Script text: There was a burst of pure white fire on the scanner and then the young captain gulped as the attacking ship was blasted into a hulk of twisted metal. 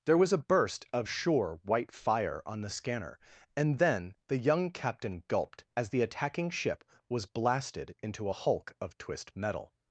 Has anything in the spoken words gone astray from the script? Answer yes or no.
yes